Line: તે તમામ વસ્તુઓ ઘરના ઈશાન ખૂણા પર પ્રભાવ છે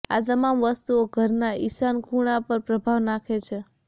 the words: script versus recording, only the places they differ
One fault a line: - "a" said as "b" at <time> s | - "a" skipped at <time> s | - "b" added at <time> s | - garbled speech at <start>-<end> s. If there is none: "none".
- "તે" said as "આ" at 0.1 s
- "નાખે" added at 3.0 s